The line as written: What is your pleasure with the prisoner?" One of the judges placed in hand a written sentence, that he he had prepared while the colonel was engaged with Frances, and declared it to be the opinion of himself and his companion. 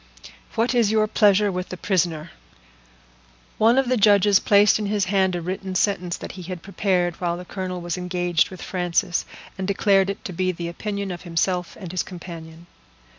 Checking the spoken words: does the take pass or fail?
fail